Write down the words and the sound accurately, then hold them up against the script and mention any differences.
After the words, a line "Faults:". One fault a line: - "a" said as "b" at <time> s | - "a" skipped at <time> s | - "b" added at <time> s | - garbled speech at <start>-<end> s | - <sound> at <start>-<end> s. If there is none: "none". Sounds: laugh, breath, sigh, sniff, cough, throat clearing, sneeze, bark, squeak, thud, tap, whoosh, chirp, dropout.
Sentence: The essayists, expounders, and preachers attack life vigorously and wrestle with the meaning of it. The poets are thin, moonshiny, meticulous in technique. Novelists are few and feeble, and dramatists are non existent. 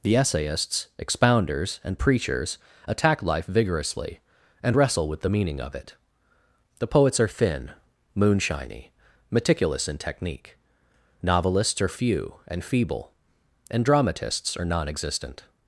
The essayists, expounders, and preachers attack life vigorously and wrestle with the meaning of it. The poets are thin, moonshiny, meticulous in technique. Novelists are few and feeble, and dramatists are non existent.
Faults:
none